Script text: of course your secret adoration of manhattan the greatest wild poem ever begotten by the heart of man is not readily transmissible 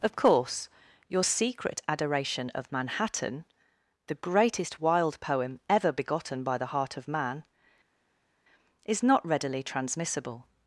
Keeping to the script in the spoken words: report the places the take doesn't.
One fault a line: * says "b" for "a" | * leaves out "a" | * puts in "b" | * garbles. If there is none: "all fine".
all fine